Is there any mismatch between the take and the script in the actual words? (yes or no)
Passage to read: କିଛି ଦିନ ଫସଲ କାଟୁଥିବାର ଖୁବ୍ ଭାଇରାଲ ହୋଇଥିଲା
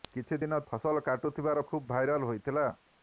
no